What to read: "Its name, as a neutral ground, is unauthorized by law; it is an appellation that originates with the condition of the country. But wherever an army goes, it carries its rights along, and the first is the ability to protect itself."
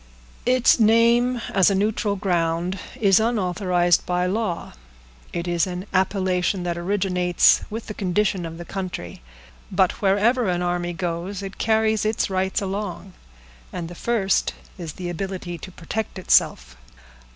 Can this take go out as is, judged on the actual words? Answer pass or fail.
pass